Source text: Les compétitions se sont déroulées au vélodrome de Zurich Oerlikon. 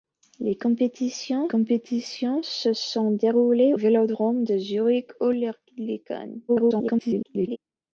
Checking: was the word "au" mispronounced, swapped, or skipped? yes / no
yes